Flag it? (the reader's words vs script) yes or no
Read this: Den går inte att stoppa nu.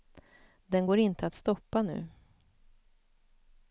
no